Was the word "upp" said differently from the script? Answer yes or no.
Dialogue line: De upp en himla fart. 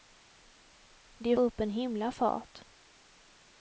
no